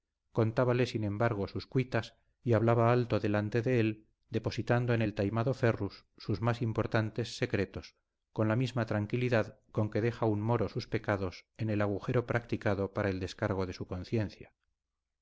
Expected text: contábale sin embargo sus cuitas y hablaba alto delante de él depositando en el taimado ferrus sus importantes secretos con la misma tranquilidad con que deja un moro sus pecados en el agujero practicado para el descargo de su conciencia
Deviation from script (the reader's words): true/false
true